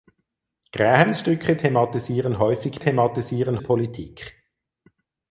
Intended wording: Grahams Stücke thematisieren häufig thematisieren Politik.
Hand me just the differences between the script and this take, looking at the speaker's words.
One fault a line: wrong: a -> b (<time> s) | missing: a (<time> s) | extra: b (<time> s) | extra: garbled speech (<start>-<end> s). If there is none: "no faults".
no faults